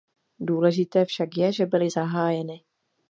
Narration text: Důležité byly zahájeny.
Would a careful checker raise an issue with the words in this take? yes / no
yes